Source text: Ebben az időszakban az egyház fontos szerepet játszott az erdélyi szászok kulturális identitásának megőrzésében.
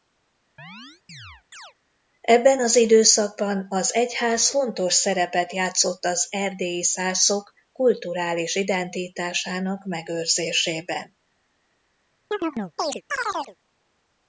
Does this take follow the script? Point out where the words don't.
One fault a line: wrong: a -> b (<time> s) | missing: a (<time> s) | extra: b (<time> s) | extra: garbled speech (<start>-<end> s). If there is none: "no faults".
no faults